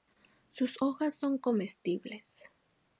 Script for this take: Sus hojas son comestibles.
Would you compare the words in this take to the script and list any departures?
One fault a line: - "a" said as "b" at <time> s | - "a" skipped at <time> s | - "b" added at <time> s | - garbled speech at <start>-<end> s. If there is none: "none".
none